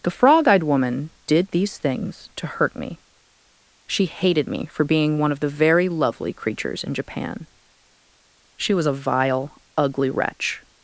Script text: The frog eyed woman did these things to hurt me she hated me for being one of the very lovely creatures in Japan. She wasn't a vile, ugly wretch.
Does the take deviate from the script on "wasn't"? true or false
true